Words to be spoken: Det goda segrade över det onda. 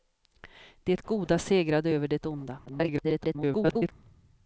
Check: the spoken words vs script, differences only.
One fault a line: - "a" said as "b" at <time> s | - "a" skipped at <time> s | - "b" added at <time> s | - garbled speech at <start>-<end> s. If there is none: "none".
- garbled speech at 2.7-3.9 s